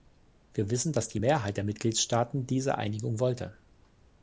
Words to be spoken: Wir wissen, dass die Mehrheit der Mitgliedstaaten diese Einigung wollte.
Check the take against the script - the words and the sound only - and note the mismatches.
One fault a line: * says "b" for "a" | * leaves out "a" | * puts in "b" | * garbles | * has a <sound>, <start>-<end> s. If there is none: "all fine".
all fine